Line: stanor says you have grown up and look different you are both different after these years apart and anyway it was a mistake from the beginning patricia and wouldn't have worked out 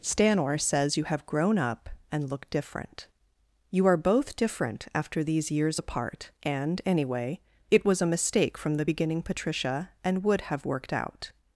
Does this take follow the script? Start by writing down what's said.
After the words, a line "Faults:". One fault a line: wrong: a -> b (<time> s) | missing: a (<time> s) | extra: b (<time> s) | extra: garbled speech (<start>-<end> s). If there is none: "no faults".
stanor says you have grown up and look different you are both different after these years apart and anyway it was a mistake from the beginning patricia and would have worked out
Faults:
wrong: wouldn't -> would (10.2 s)